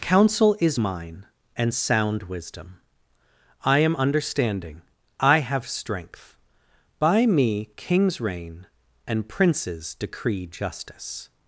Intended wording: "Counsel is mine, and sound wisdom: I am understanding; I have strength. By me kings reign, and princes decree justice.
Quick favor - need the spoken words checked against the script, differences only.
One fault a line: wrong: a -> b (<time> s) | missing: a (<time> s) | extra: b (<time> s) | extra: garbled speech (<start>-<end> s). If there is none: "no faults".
no faults